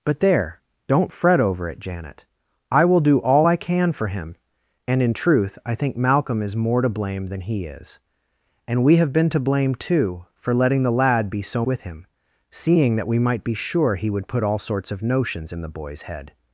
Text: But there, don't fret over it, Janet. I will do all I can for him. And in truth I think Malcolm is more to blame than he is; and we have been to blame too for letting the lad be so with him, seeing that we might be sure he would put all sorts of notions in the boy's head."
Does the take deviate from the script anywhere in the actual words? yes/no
no